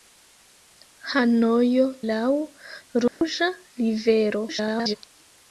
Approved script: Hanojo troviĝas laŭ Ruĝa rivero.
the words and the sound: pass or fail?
fail